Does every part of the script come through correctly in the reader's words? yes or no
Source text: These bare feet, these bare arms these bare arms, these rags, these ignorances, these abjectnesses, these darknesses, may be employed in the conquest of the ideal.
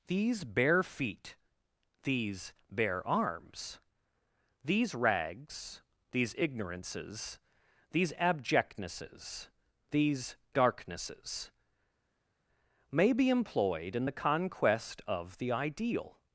no